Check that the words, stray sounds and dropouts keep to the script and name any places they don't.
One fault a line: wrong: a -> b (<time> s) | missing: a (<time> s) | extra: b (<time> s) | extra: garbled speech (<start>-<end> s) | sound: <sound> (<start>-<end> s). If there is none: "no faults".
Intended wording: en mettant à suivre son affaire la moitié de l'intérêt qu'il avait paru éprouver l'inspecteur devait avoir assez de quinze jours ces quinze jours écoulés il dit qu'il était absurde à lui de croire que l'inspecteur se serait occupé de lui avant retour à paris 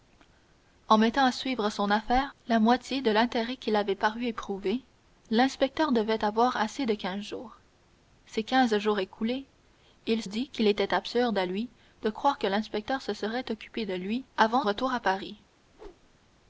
sound: whoosh (15.6-16.2 s)